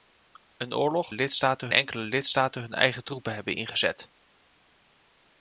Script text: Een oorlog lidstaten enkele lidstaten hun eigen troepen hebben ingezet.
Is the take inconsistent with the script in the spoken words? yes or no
no